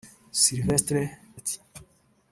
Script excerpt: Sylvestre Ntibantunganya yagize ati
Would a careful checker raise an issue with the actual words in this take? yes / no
yes